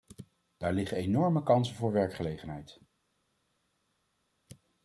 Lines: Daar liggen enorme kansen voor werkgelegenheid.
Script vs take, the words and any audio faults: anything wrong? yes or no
no